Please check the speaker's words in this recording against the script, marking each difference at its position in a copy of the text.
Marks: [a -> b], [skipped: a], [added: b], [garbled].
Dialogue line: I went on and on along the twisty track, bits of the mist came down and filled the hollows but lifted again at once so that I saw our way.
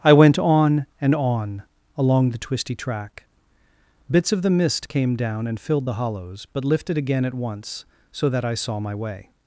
I went on and on along the twisty track, bits of the mist came down and filled the hollows but lifted again at once so that I saw [our -> my] way.